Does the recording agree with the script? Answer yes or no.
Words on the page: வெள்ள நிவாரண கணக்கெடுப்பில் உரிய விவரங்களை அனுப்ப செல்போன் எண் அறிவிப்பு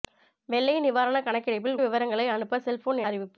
no